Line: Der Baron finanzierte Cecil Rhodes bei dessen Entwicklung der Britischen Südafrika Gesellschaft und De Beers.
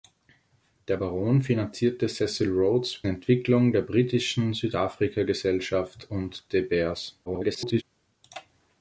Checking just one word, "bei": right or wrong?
wrong